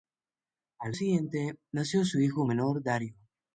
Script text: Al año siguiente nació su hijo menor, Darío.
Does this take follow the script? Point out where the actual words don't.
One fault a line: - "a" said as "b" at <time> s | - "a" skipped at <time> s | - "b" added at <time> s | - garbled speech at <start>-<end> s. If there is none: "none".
- "año" skipped at 0.9 s